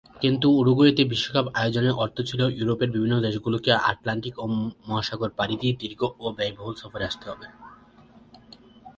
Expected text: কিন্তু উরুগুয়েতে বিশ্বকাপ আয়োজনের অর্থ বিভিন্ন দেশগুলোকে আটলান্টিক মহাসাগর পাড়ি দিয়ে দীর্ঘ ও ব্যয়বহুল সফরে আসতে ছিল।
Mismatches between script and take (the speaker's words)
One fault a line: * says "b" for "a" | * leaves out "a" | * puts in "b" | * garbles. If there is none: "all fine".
* puts in "ছিল ইউরোপের"
* says "হবে" for "ছিল"